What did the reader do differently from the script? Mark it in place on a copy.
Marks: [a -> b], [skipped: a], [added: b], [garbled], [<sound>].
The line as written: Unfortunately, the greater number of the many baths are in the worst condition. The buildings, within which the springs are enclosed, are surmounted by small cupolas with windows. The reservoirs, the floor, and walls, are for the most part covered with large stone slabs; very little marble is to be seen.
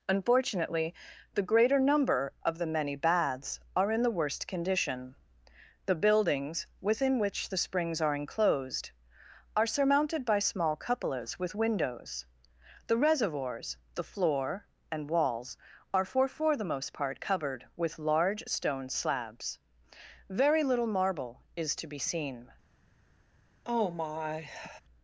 Unfortunately, the greater number of the many baths are in the worst condition. The buildings, within which the springs are enclosed, are surmounted by small cupolas with windows. The reservoirs, the floor, and walls, are for [added: for] the most part covered with large stone slabs; very little marble is to be seen. [sigh]